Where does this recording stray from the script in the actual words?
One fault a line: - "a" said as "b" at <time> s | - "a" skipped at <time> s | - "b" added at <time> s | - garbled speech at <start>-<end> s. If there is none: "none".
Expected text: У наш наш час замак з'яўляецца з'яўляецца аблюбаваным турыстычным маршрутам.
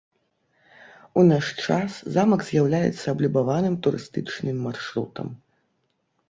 - "наш" skipped at 1.4 s
- "з'яўляецца" skipped at 3.0 s